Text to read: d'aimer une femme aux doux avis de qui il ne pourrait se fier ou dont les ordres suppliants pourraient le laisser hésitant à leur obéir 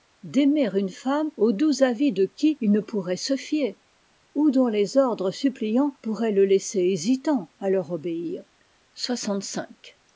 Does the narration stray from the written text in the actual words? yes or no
no